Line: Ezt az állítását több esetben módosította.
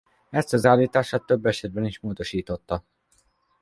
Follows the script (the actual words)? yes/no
no